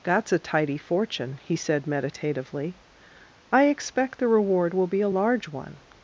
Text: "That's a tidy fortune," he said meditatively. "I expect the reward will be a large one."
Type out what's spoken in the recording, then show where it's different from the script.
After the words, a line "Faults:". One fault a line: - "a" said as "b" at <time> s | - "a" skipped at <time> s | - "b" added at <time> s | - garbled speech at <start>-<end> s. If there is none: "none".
"That's a tidy fortune," he said meditatively. "I expect the reward will be a large one."
Faults:
none